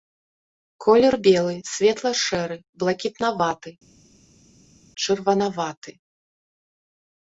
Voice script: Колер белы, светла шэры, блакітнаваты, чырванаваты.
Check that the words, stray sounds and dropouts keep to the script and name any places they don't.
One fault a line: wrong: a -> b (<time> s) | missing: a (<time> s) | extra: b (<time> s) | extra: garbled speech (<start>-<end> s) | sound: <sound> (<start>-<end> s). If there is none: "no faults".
no faults